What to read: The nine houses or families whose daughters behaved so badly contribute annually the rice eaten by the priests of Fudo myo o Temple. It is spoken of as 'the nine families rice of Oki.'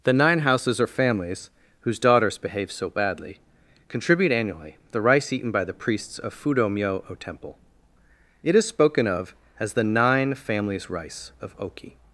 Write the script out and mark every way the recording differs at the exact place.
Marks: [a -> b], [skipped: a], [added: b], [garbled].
The nine houses or families whose daughters [behaved -> behave] so badly contribute annually the rice eaten by the priests of Fudo myo o Temple. It is spoken of as 'the nine families rice of Oki.'